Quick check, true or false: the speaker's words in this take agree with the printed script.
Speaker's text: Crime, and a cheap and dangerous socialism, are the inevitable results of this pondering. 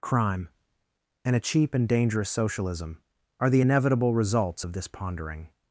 true